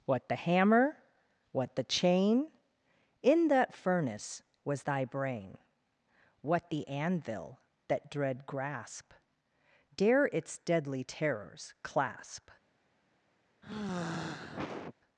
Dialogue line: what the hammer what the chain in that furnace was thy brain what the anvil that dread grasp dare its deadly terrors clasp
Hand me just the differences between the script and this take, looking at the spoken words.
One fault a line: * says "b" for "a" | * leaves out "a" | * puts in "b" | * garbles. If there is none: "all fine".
all fine